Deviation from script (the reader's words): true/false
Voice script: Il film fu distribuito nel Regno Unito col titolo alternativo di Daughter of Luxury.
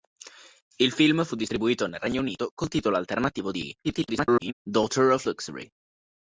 true